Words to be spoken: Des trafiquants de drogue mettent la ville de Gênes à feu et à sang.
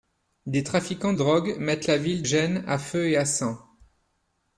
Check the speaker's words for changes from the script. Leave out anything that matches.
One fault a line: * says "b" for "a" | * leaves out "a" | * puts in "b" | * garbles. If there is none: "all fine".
* leaves out "de"
* leaves out "de"